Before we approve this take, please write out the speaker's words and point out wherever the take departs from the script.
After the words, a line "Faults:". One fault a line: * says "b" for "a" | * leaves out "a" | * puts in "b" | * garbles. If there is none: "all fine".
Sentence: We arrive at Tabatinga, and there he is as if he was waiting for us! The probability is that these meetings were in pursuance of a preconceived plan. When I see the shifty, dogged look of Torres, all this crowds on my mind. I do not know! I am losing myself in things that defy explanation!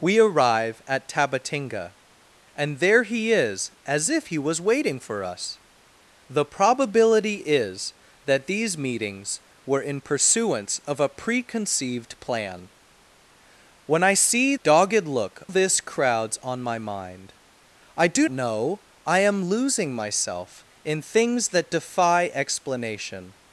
We arrive at Tabatinga, and there he is as if he was waiting for us! The probability is that these meetings were in pursuance of a preconceived plan. When I see dogged look this crowds on my mind. I do know! I am losing myself in things that defy explanation!
Faults:
* leaves out "the shifty"
* leaves out "of Torres all"
* leaves out "not"